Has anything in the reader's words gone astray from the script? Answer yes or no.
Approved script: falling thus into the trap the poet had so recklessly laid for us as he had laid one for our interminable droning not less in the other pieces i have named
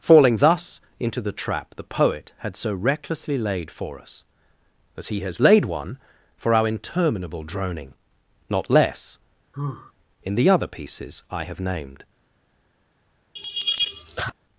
yes